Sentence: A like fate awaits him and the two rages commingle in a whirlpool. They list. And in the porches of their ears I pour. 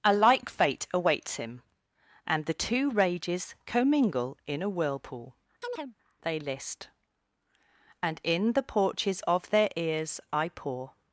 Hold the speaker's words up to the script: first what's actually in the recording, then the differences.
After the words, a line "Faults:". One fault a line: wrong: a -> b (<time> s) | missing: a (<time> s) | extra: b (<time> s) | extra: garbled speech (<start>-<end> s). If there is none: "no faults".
A like fate awaits him and the two rages commingle in a whirlpool. They list. And in the porches of their ears I pour.
Faults:
no faults